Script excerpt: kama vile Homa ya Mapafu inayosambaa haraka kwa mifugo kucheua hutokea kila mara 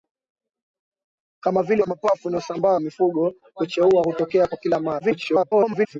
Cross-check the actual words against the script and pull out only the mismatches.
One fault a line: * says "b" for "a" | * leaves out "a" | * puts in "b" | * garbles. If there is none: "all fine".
* leaves out "Homa"
* leaves out "haraka kwa"
* garbles